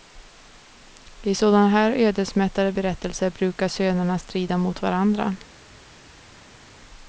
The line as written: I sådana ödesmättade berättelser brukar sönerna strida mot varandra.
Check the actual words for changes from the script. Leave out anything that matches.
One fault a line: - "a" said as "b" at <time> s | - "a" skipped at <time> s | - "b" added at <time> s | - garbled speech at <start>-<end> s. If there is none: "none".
- "här" added at 1.7 s